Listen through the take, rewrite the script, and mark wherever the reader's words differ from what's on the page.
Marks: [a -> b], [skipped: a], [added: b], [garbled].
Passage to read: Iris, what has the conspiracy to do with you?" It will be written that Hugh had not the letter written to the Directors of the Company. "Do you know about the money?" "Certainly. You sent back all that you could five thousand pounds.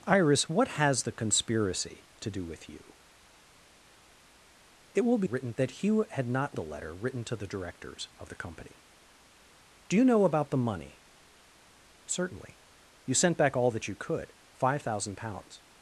Iris, what has the conspiracy to do with you?" It will be written that Hugh had not the letter written to the Directors of the Company. "Do you know about the money?" "Certainly. You sent back all that you could five thousand pounds.